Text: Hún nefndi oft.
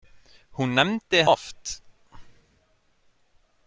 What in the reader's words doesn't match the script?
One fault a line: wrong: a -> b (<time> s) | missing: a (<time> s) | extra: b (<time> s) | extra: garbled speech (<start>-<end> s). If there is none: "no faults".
no faults